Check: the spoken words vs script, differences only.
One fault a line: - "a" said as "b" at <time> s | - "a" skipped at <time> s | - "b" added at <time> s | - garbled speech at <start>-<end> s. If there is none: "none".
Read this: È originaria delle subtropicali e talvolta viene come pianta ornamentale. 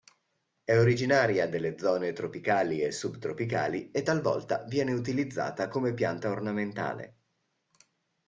- "zone tropicali e" added at 1.8 s
- "utilizzata" added at 4.9 s